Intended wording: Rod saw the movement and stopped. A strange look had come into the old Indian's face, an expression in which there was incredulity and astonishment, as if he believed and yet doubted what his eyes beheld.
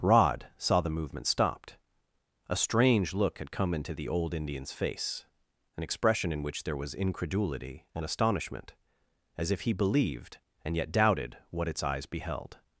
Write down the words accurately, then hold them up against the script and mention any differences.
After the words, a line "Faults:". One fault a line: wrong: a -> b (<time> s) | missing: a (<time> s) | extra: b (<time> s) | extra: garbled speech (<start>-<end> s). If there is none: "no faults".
Rod saw the movement stopped. A strange look had come into the old Indian's face, an expression in which there was incredulity and astonishment, as if he believed and yet doubted what its eyes beheld.
Faults:
missing: and (1.3 s)
wrong: his -> its (11.7 s)